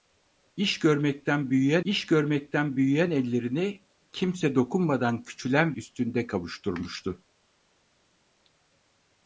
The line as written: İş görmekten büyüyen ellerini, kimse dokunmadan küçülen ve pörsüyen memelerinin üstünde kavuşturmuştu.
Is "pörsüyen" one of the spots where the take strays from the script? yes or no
yes